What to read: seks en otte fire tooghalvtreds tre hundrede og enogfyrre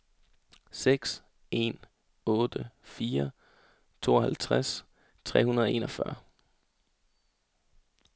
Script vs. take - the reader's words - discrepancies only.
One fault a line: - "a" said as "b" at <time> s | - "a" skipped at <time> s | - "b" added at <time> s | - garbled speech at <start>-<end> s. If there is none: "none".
none